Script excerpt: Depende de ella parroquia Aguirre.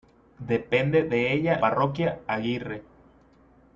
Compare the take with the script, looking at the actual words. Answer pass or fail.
pass